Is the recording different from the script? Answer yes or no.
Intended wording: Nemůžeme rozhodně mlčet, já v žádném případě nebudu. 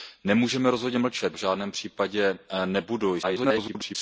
yes